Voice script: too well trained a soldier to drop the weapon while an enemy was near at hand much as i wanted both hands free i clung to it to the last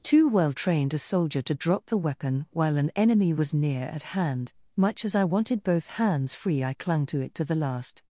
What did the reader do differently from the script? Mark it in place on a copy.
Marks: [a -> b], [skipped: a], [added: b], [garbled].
too well trained a soldier to drop the weapon while an enemy was near at hand much as i wanted both hands free i clung to it to the last